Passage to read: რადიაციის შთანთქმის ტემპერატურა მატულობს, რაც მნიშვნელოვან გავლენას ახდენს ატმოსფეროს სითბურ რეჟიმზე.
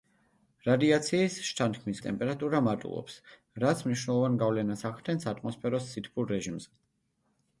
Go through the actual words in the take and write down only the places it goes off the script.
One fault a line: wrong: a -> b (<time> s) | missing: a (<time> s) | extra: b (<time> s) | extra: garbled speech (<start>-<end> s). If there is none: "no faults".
no faults